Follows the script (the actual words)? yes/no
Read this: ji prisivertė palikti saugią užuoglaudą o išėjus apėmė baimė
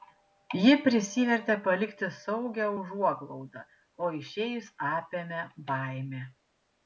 yes